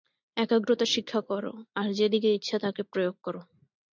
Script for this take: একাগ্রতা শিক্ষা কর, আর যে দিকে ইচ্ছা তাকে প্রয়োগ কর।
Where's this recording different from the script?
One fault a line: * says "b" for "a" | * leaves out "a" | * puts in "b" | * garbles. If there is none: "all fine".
all fine